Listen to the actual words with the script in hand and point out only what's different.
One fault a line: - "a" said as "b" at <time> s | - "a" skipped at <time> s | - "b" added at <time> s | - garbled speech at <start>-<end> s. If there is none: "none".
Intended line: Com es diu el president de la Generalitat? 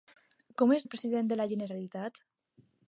- "diu" skipped at 0.9 s